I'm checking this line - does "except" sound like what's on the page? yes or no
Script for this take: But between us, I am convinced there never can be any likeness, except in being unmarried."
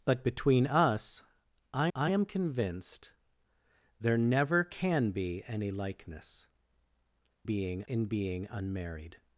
no